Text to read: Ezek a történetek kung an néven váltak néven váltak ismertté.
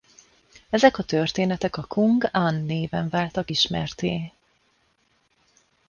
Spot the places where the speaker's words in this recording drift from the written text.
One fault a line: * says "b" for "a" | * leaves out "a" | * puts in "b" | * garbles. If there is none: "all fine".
* puts in "a"
* leaves out "néven váltak"